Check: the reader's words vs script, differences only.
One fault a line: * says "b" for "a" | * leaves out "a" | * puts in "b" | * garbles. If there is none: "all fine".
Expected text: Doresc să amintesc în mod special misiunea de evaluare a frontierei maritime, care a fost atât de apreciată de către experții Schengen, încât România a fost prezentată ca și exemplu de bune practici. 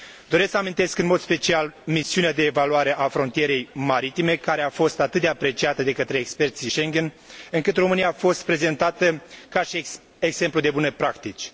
all fine